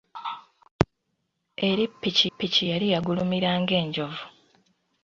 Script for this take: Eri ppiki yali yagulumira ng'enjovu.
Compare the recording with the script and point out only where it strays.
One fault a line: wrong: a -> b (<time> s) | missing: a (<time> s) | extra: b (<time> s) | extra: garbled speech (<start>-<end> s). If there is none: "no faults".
extra: ppiki (2.3 s)